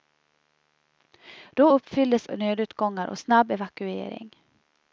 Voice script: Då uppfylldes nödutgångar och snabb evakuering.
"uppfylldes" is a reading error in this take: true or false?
false